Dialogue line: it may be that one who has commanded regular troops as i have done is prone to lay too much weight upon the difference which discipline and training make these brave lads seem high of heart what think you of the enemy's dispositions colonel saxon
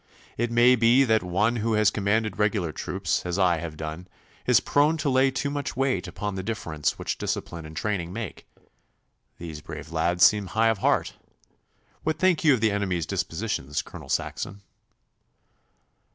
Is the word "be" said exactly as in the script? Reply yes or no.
yes